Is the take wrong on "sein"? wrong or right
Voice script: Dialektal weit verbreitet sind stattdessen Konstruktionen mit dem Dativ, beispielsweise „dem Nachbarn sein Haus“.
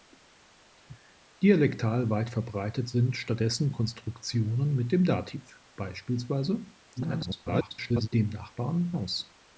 wrong